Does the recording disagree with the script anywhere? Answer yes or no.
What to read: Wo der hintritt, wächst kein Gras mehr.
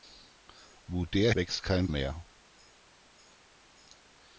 yes